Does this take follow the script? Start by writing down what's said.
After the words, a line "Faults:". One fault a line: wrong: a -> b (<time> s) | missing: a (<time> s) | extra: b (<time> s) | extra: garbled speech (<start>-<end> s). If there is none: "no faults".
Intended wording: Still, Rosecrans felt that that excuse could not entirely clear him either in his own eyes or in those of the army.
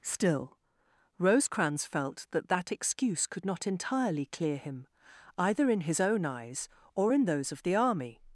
Still, Rosecrans felt that that excuse could not entirely clear him either in his own eyes or in those of the army.
Faults:
no faults